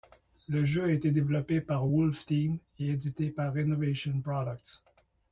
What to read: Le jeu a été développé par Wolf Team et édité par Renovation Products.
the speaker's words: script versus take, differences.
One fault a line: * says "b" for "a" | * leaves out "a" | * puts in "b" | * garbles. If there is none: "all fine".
all fine